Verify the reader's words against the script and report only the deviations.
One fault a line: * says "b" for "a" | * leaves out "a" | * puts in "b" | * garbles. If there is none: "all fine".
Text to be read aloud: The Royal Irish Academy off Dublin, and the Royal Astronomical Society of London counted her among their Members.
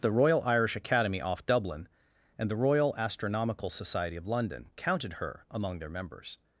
all fine